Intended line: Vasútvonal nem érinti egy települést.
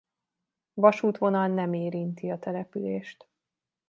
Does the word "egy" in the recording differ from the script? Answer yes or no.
yes